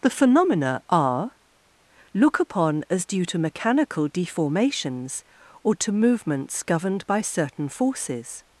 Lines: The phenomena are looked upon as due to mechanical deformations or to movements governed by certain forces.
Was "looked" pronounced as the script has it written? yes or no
no